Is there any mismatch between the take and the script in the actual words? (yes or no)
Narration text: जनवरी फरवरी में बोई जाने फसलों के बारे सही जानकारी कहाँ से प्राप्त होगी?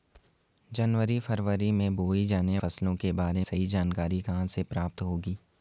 no